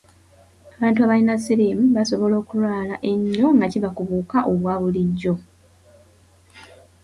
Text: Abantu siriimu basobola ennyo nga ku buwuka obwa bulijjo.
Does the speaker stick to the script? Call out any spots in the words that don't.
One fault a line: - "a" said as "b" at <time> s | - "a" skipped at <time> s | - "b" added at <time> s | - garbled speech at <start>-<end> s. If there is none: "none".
- "abalina" added at 1.0 s
- "okulwala" added at 2.4 s
- "kiva" added at 3.7 s